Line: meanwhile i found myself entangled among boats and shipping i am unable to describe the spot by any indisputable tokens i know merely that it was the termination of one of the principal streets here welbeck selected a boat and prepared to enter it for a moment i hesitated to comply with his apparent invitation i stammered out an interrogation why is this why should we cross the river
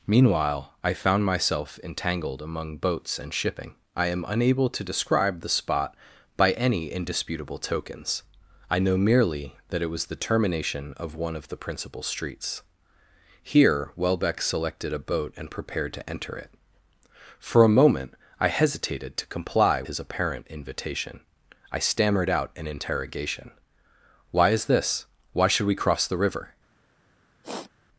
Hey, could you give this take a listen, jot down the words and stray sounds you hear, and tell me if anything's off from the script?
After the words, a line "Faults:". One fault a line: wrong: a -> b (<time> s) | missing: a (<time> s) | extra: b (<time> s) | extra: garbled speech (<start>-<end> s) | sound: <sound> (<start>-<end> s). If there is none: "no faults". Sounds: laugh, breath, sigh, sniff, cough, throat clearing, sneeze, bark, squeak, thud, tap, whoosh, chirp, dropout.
meanwhile i found myself entangled among boats and shipping i am unable to describe the spot by any indisputable tokens i know merely that it was the termination of one of the principal streets here welbeck selected a boat and prepared to enter it for a moment i hesitated to comply his apparent invitation i stammered out an interrogation why is this why should we cross the river
Faults:
missing: with (19.8 s)
sound: sniff (27.4-27.7 s)